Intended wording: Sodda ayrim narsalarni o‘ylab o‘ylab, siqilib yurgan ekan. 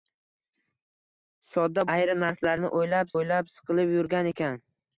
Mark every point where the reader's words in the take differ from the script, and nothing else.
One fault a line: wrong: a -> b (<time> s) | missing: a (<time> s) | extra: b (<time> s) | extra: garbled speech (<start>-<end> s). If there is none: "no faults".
no faults